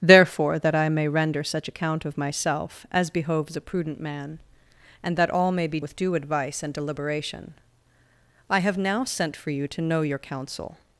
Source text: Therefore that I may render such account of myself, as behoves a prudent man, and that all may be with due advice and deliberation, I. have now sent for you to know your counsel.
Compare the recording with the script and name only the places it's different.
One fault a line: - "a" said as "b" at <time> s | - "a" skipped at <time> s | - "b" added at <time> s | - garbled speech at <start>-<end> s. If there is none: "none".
none